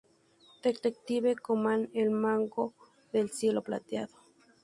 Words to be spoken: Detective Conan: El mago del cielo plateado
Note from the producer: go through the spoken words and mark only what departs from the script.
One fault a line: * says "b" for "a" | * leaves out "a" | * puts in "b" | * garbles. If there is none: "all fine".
all fine